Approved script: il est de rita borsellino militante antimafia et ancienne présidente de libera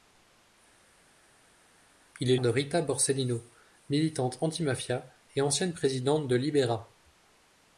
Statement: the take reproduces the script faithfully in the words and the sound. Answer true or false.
true